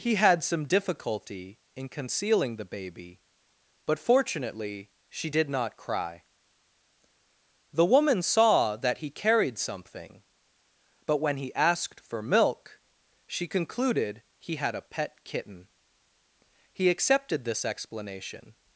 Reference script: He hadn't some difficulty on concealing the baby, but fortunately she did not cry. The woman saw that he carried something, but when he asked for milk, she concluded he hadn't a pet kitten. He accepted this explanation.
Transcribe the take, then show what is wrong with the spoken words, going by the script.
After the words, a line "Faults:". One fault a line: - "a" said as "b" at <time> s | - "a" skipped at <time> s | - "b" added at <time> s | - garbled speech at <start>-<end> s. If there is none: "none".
He had some difficulty in concealing the baby, but fortunately she did not cry. The woman saw that he carried something, but when he asked for milk, she concluded he had a pet kitten. He accepted this explanation.
Faults:
- "hadn't" said as "had" at 0.1 s
- "on" said as "in" at 1.8 s
- "hadn't" said as "had" at 14.6 s